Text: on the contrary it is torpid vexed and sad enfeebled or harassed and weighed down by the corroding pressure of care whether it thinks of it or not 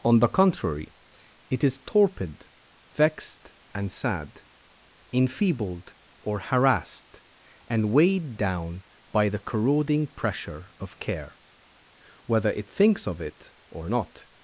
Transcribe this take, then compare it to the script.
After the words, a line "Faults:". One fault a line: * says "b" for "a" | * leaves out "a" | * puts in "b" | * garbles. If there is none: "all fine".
on the contrary it is torpid vexed and sad enfeebled or harassed and weighed down by the corroding pressure of care whether it thinks of it or not
Faults:
all fine